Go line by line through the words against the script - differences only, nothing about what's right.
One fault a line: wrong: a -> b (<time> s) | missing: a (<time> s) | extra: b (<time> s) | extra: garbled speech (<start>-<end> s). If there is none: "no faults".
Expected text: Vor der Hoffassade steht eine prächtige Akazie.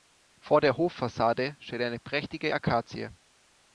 no faults